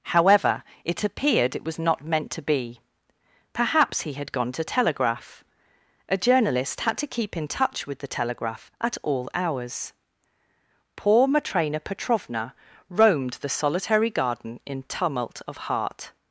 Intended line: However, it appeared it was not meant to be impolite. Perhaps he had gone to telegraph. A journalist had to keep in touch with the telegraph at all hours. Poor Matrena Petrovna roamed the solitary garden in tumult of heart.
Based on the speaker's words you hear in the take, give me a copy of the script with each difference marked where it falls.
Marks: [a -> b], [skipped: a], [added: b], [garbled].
However, it appeared it was not meant to be [skipped: impolite.] Perhaps he had gone to telegraph. A journalist had to keep in touch with the telegraph at all hours. Poor Matrena Petrovna roamed the solitary garden in tumult of heart.